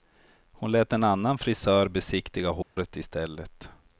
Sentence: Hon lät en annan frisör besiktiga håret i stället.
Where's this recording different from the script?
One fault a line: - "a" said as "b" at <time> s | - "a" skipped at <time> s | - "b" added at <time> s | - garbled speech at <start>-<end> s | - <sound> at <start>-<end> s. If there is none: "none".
- dropout at 2.6-2.8 s